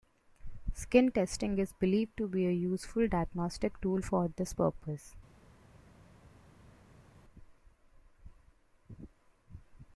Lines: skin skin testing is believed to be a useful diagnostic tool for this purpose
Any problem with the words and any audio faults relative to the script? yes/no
yes